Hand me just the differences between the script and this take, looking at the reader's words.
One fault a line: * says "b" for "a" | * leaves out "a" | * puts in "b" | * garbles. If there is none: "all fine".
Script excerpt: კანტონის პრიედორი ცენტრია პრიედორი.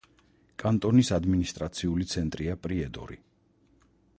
* says "ადმინისტრაციული" for "პრიედორი"